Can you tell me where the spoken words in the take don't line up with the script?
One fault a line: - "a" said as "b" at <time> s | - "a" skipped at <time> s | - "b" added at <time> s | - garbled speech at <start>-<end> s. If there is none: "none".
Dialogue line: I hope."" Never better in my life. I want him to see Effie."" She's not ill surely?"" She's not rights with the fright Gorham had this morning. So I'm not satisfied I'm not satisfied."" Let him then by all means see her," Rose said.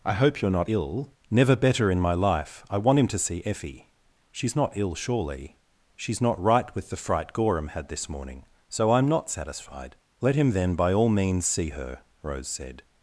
- "you're not ill" added at 0.4 s
- "rights" said as "right" at 6.4 s
- "I'm not satisfied" skipped at 10.0 s